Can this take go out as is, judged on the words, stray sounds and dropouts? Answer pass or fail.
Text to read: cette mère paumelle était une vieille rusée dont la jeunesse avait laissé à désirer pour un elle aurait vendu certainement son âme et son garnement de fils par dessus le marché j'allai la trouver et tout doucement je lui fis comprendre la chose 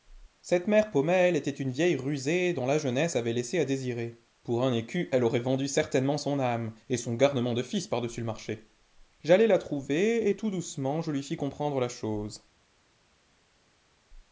fail